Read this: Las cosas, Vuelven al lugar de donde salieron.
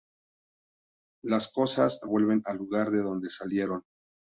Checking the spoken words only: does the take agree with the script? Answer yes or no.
yes